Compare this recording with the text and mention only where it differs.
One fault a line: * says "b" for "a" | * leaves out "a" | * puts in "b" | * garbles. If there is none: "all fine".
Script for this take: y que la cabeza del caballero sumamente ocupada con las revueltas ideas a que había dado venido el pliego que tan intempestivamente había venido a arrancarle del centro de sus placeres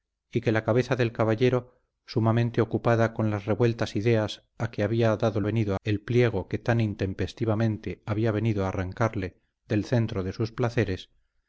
all fine